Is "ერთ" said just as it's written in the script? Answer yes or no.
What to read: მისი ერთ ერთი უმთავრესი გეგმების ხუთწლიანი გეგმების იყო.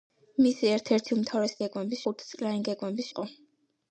yes